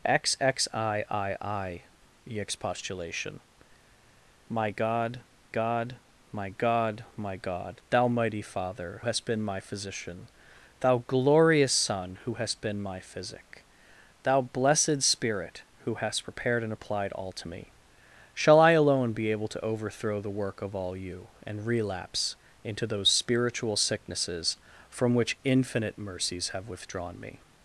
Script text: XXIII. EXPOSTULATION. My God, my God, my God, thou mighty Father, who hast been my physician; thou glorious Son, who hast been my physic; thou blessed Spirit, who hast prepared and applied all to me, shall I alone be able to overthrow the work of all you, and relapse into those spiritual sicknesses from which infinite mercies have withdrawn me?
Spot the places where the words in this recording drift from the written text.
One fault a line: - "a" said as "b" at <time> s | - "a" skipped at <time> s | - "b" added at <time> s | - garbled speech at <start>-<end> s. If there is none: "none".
- "God" added at 5.5 s
- "who" skipped at 9.0 s